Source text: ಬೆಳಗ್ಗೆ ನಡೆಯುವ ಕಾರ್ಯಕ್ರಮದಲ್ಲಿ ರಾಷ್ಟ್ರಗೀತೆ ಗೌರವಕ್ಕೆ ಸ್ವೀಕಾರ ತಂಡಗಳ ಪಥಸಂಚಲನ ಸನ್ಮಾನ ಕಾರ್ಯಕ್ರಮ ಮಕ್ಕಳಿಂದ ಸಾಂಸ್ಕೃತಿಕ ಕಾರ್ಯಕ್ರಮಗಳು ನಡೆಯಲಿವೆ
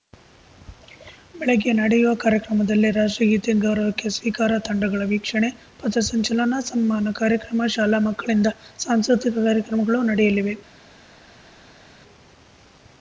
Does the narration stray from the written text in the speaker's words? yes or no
yes